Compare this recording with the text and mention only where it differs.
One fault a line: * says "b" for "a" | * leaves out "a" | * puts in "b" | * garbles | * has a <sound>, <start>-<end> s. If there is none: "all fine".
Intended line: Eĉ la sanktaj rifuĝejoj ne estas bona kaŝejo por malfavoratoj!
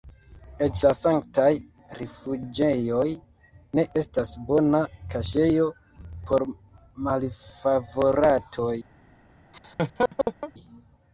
* has a laugh, 9.5-10.5 s